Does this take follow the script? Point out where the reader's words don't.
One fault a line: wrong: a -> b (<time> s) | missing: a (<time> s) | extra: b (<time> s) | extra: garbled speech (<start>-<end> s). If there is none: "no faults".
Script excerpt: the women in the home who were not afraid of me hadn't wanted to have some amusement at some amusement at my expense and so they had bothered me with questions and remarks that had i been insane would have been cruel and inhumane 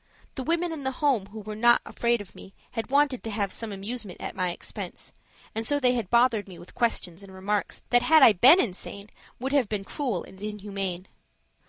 wrong: hadn't -> had (2.7 s)
missing: some amusement at (4.3 s)